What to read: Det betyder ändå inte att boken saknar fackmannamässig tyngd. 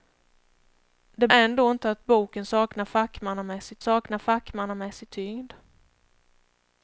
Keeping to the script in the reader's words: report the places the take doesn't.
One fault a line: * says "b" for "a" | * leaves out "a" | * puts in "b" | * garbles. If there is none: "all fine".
* leaves out "betyder"
* puts in "saknar fackmannamässig"